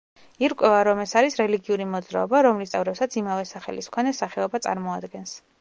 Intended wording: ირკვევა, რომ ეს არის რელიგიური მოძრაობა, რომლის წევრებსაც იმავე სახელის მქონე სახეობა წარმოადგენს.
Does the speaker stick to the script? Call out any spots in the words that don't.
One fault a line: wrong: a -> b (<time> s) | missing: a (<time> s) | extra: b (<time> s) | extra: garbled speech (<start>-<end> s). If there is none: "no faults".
no faults